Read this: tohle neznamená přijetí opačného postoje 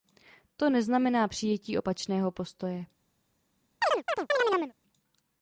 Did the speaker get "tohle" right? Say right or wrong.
wrong